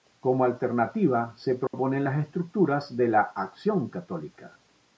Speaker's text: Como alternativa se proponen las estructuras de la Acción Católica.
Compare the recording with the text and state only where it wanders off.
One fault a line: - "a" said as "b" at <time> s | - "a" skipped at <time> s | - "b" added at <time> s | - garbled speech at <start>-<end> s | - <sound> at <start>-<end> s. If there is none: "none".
- dropout at 1.7-1.7 s